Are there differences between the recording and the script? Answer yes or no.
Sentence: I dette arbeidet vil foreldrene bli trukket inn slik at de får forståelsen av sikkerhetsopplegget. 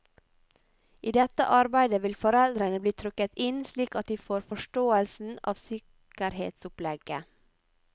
no